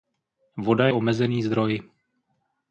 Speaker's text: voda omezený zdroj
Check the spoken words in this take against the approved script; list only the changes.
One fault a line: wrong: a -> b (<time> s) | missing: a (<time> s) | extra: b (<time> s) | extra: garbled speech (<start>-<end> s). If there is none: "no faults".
no faults